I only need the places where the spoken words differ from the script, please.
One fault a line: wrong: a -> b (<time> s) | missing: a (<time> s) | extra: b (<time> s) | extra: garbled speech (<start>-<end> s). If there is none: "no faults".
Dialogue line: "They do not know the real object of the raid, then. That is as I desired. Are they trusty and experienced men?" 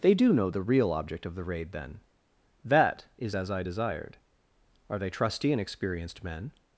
missing: not (0.3 s)